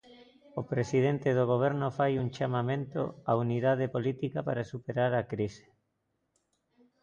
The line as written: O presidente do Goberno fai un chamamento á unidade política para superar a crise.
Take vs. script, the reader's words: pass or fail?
pass